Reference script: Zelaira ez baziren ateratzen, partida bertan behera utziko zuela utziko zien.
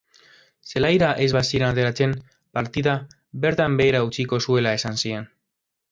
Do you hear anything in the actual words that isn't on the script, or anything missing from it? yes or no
yes